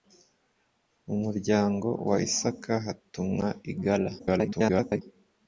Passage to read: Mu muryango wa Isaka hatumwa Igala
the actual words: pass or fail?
fail